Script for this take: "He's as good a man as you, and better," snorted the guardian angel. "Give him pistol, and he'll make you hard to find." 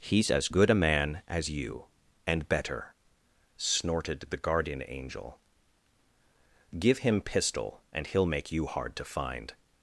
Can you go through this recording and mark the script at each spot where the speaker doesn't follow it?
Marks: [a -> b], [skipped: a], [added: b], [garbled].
"He's as good a man as you, and better," snorted the guardian angel. "Give him pistol, and he'll make you hard to find."